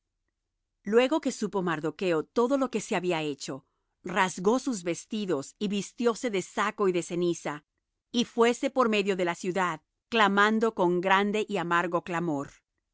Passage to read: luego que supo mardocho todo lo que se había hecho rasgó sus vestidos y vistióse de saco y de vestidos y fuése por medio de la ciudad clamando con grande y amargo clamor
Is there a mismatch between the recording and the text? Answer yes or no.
yes